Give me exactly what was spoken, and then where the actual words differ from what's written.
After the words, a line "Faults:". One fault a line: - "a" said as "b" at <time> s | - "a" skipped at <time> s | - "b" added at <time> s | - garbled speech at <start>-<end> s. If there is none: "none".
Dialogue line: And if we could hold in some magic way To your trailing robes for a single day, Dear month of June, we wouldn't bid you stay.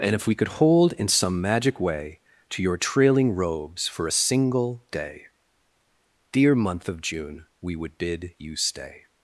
And if we could hold in some magic way To your trailing robes for a single day, Dear month of June, we would bid you stay.
Faults:
- "wouldn't" said as "would" at 7.8 s